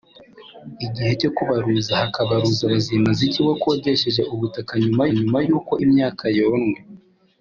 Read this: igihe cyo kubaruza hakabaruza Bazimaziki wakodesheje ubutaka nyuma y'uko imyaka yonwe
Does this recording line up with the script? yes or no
no